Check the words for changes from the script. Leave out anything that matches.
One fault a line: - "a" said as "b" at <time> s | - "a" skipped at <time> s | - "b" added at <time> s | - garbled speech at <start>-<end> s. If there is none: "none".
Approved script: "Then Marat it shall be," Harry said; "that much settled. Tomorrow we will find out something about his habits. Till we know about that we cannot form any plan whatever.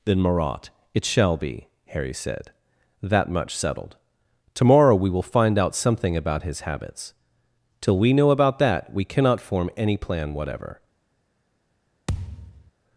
none